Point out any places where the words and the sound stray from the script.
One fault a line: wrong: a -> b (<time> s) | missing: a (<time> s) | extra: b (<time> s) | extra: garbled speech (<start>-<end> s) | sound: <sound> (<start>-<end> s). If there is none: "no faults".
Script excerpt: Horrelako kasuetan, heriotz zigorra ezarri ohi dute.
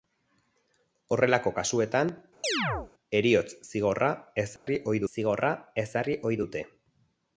sound: chirp (2.4-2.9 s)
sound: dropout (4.6-4.7 s)
extra: zigorra ezarri ohi (5.1 s)